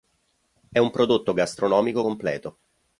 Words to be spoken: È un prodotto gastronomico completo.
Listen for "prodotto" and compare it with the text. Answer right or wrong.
right